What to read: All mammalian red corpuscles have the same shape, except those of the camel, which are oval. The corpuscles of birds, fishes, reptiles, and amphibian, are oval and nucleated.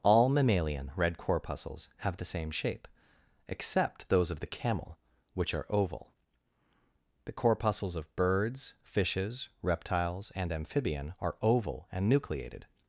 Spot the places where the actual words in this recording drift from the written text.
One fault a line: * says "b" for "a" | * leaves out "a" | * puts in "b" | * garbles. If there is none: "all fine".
all fine